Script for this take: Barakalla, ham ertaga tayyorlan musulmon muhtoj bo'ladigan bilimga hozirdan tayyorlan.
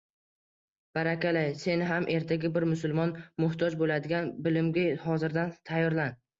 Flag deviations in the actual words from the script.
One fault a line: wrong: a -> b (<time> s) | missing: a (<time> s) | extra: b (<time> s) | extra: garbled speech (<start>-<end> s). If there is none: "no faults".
extra: sen (1.6 s)
wrong: tayyorlan -> bir (2.6 s)